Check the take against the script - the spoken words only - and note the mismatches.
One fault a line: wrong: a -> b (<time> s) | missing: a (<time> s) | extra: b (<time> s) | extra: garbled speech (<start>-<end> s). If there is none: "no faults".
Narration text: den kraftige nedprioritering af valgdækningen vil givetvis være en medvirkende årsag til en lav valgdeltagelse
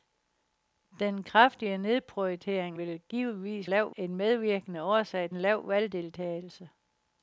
missing: af valgdækningen (2.8 s)
wrong: være -> lav (3.6 s)
missing: til (5.3 s)